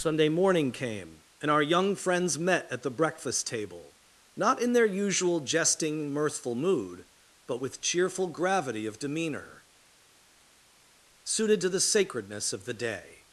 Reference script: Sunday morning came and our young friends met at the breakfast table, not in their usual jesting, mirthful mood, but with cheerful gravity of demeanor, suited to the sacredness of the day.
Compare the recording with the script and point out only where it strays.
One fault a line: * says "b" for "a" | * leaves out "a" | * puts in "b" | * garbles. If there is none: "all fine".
all fine